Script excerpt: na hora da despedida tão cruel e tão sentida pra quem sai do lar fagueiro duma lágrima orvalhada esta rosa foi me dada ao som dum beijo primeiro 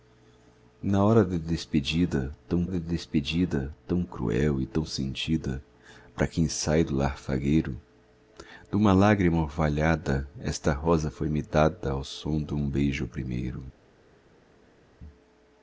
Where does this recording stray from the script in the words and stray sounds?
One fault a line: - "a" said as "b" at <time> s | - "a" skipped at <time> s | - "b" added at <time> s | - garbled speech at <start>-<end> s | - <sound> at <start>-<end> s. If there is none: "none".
- "da despedida tão" added at 2.6 s